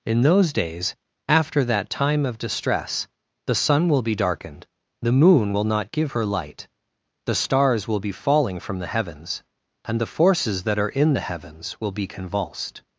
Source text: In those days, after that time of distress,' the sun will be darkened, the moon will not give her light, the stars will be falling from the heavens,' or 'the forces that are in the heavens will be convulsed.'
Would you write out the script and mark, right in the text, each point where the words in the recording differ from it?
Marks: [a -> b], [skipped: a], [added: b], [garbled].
In those days, after that time of distress,' the sun will be darkened, the moon will not give her light, the stars will be falling from the heavens,' [or -> and] 'the forces that are in the heavens will be convulsed.'